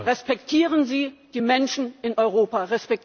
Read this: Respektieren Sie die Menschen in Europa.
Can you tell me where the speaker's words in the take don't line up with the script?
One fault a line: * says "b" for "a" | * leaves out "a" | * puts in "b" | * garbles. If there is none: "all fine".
all fine